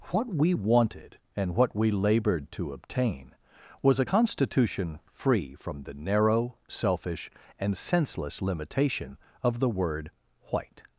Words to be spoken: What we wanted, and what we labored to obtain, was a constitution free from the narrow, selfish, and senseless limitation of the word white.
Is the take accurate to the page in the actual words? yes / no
yes